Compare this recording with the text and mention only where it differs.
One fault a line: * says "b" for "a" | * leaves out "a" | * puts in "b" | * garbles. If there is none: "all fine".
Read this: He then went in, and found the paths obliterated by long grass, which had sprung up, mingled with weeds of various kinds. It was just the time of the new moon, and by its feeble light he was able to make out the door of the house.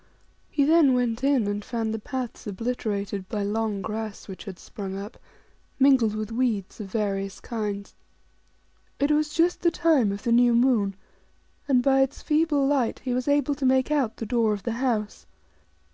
all fine